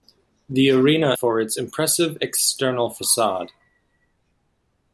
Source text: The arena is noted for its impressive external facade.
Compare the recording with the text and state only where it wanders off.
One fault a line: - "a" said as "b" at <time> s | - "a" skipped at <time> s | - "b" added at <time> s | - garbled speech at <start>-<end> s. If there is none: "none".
- "is noted" skipped at 1.1 s